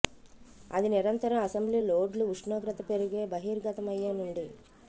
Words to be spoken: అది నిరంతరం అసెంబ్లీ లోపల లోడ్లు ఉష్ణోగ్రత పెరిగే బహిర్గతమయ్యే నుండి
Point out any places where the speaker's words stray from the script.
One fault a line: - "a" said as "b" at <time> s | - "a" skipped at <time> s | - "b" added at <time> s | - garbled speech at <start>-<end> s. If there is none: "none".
- "లోపల" skipped at 1.8 s